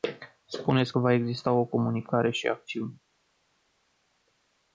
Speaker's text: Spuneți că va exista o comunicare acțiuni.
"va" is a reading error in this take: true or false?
false